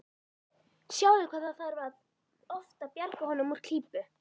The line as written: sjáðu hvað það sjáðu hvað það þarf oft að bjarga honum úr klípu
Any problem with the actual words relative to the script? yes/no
yes